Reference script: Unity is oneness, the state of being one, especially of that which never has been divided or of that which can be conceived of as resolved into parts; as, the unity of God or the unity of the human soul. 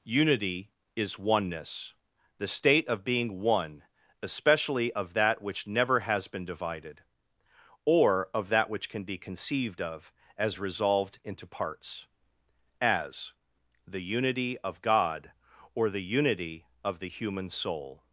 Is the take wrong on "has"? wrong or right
right